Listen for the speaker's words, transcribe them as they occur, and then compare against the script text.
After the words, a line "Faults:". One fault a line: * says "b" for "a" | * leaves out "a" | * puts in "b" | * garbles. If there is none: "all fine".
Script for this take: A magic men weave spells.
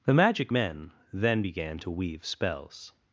The magic men then began to weave spells.
Faults:
* says "The" for "A"
* puts in "then began to"